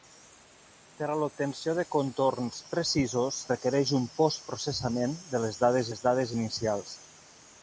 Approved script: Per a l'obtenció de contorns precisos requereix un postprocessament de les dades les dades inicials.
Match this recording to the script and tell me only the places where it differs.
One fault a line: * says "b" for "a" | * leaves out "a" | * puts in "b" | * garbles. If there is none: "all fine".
all fine